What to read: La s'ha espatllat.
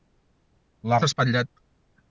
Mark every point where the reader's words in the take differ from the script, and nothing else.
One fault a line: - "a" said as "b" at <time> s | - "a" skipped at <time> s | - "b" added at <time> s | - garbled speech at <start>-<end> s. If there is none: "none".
none